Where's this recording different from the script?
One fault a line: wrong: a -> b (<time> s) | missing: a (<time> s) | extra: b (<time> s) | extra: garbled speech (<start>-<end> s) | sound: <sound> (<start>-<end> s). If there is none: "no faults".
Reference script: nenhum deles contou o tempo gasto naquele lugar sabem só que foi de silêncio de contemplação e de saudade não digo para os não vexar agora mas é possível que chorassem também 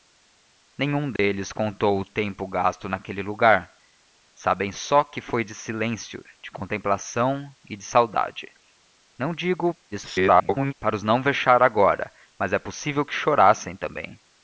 sound: dropout (1.2-1.2 s)
extra: garbled speech (9.9-10.7 s)